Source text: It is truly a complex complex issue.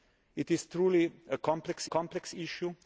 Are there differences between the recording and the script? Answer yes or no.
no